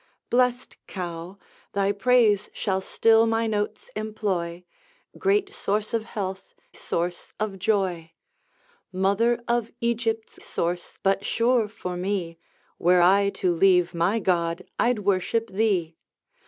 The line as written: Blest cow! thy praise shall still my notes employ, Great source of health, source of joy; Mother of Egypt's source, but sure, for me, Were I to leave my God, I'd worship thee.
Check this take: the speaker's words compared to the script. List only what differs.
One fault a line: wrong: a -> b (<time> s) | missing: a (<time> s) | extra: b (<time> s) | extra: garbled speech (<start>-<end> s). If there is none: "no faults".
no faults